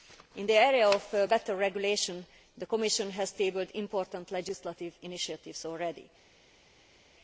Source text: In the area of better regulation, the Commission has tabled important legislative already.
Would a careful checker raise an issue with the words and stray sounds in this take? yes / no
yes